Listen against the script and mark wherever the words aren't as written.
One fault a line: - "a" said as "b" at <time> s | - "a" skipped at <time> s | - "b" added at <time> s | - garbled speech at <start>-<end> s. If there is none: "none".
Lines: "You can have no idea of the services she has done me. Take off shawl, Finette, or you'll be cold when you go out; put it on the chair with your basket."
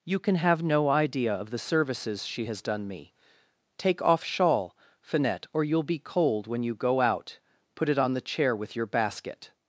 none